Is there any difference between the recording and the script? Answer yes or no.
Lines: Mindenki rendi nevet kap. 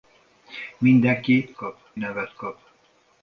yes